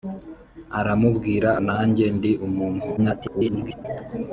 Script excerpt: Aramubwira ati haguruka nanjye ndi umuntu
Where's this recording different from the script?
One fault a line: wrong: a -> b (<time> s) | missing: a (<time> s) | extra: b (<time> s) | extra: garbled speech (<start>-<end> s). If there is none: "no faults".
missing: ati haguruka (1.5 s)
extra: garbled speech (3.0-3.9 s)